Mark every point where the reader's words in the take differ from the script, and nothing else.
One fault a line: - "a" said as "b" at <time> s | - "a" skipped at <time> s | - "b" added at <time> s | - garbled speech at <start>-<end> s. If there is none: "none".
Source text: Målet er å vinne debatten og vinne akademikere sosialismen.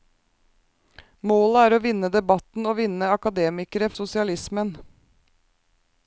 none